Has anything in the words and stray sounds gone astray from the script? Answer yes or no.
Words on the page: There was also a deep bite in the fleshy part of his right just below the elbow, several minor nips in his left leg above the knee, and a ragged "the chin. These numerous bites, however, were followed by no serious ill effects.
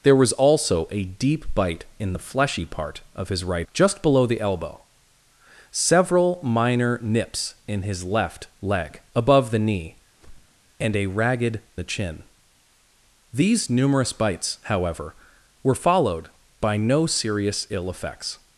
yes